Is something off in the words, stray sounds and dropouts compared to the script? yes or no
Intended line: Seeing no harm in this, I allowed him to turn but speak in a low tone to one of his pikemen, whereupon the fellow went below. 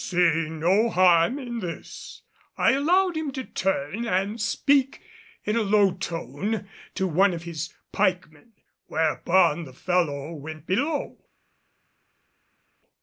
yes